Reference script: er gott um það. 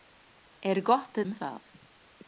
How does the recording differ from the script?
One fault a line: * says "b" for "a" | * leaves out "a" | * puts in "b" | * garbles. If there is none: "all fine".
all fine